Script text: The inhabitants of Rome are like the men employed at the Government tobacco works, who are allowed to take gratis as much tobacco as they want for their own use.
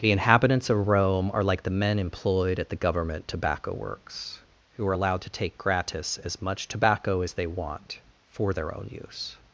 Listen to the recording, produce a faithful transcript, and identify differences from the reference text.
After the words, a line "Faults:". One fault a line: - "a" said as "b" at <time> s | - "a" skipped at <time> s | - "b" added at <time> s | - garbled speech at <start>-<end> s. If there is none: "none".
The inhabitants of Rome are like the men employed at the Government tobacco works, who are allowed to take gratis as much tobacco as they want for their own use.
Faults:
none